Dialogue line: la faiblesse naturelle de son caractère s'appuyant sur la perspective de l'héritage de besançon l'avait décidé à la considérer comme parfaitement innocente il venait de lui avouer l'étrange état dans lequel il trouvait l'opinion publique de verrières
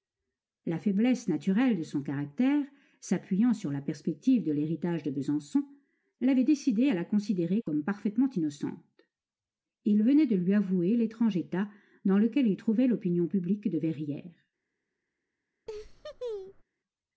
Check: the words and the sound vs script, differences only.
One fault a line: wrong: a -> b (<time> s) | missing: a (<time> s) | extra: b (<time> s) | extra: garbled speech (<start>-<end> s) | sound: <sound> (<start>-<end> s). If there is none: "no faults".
sound: laugh (15.7-16.6 s)